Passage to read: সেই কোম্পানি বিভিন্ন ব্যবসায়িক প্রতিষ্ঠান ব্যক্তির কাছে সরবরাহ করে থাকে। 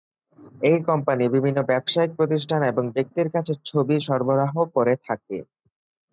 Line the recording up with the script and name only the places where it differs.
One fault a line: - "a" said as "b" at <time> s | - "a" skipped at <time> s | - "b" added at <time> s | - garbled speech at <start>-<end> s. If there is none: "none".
- "সেই" said as "এই" at 0.6 s
- "এবং" added at 2.7 s
- "ছবি" added at 3.6 s